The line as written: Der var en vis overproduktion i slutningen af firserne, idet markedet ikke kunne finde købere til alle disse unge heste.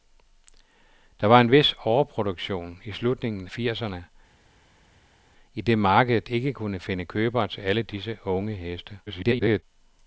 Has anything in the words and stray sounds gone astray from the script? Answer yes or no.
yes